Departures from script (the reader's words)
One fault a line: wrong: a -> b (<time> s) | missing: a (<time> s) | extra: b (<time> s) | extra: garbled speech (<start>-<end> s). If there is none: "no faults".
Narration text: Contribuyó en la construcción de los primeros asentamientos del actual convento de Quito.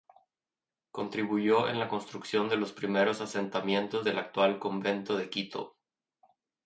no faults